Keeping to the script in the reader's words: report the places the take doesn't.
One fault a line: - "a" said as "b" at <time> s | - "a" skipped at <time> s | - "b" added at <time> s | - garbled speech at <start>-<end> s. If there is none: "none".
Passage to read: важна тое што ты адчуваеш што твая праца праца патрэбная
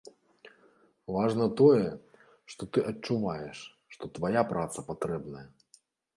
- "праца" skipped at 4.9 s